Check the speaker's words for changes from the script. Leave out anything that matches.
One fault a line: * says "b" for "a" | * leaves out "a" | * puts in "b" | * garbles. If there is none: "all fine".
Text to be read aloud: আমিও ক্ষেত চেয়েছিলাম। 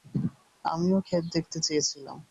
* puts in "দেখতে"